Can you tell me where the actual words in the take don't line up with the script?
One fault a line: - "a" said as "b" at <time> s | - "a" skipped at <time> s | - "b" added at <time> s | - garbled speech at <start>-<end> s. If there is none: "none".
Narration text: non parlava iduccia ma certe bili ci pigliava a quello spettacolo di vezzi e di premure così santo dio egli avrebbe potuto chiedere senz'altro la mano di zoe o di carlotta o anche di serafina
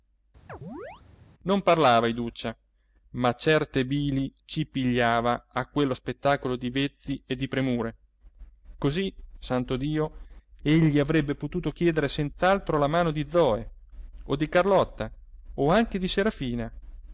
none